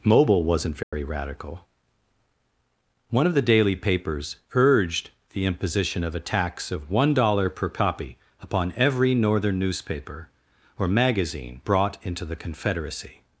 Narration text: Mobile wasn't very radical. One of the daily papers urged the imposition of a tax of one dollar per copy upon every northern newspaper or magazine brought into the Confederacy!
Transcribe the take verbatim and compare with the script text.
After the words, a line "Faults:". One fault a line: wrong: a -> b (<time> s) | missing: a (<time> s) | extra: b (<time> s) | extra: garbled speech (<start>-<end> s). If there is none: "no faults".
Mobile wasn't very radical. One of the daily papers urged the imposition of a tax of one dollar per copy upon every northern newspaper or magazine brought into the Confederacy!
Faults:
no faults